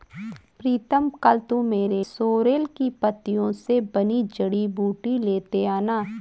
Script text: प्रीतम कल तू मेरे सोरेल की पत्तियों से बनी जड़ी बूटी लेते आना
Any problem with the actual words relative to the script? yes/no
no